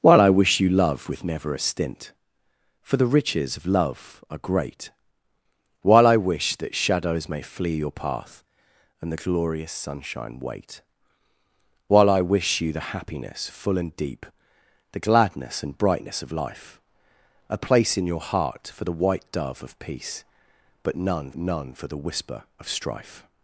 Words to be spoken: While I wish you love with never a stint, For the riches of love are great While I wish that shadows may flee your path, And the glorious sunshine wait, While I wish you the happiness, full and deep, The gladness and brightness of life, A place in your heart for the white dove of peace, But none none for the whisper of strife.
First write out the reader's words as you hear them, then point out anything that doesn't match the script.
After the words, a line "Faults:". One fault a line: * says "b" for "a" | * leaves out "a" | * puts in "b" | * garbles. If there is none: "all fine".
While I wish you love with never a stint, For the riches of love are great While I wish that shadows may flee your path, And the glorious sunshine wait, While I wish you the happiness, full and deep, The gladness and brightness of life, A place in your heart for the white dove of peace, But none none for the whisper of strife.
Faults:
all fine